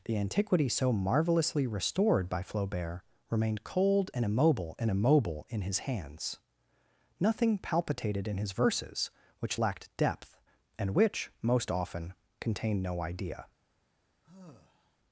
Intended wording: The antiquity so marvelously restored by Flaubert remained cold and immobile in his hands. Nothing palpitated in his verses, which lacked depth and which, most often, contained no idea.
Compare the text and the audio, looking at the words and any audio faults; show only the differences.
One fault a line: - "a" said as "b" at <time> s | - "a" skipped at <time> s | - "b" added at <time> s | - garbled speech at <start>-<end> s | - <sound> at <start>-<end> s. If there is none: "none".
- "and immobile" added at 4.8 s
- sigh at 14.2-15.0 s